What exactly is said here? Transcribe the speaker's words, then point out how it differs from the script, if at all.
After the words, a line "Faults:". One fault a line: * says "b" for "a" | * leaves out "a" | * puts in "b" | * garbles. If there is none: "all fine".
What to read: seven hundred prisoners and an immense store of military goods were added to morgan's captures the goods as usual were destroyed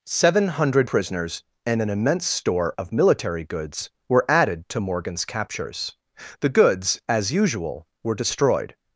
seven hundred prisoners and an immense store of military goods were added to morgan's captures the goods as usual were destroyed
Faults:
all fine